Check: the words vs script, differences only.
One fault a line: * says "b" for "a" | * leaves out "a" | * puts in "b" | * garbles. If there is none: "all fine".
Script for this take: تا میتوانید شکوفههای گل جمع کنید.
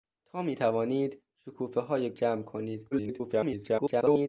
* leaves out "گل"
* garbles